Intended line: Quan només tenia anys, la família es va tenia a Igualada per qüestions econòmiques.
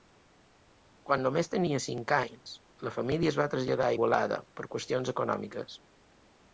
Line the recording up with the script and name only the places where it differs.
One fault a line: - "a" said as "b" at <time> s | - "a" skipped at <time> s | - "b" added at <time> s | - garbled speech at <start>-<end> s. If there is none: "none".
- "cinc" added at 1.9 s
- "tenia" said as "traslladar" at 3.5 s